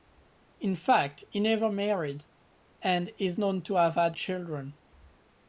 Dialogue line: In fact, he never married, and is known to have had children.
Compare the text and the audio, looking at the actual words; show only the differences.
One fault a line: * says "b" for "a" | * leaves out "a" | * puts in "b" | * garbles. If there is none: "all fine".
all fine